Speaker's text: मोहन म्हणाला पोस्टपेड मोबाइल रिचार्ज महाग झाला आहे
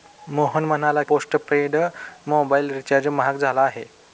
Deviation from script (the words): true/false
false